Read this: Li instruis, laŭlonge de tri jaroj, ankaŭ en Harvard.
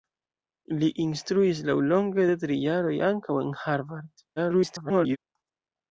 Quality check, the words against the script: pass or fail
fail